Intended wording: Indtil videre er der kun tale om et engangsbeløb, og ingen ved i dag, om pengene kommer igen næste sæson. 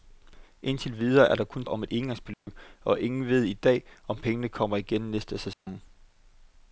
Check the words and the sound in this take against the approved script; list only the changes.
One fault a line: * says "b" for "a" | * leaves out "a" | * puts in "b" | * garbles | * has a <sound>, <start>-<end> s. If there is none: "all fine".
* leaves out "tale"
* has a dropout, 2.3-2.5 s
* has a dropout, 5.5-5.7 s